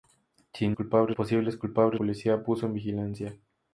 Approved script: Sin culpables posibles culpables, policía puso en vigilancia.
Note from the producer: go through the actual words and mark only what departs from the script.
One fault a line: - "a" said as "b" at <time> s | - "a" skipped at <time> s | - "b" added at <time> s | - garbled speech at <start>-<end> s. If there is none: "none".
none